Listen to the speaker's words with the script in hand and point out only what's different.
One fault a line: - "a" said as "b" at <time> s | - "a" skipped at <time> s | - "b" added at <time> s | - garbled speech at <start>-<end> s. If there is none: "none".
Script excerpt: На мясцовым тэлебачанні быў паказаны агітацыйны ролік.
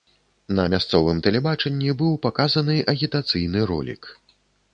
none